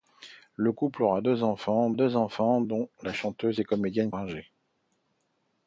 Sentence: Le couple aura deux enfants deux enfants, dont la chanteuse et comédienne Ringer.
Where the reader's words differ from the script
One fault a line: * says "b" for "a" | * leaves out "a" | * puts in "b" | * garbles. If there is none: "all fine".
all fine